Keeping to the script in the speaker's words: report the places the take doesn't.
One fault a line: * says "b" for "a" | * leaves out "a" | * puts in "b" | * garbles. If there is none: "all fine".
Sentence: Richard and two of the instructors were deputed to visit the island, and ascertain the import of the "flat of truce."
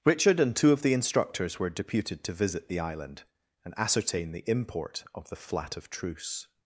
all fine